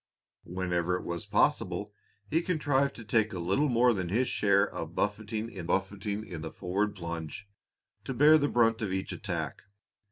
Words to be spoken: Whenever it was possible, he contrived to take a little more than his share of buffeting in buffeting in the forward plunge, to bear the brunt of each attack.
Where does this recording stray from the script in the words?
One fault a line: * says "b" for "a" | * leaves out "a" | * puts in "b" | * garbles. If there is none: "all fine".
all fine